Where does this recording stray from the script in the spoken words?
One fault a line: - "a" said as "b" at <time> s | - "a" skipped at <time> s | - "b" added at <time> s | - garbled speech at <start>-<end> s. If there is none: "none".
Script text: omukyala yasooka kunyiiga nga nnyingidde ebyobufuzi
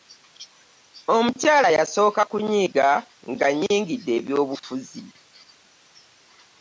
none